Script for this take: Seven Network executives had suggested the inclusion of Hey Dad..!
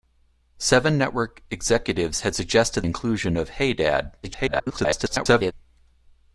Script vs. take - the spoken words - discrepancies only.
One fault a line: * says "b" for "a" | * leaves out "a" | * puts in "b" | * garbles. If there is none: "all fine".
* leaves out "the"
* garbles